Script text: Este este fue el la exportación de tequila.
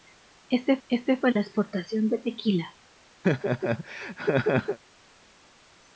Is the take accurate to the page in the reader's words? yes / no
yes